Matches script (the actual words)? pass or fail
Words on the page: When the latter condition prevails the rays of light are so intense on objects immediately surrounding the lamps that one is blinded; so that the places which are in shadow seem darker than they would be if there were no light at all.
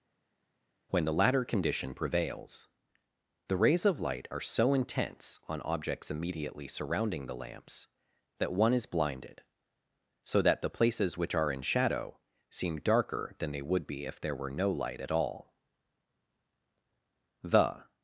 fail